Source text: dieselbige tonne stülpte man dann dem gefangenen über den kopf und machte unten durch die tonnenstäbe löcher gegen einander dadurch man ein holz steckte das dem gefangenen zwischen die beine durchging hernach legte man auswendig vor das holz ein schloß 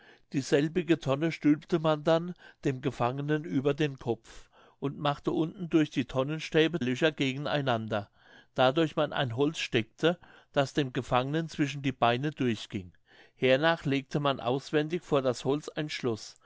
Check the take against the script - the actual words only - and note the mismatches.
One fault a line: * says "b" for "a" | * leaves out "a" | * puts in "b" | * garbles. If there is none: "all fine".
all fine